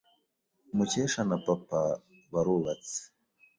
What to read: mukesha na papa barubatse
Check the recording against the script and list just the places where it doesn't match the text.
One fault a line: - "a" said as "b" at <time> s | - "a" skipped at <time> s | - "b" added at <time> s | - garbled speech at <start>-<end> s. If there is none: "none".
none